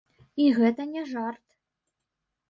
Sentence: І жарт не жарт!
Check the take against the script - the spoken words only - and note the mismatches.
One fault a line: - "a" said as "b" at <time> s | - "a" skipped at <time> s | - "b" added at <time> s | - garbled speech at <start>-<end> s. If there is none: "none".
- "жарт" said as "гэта" at 0.6 s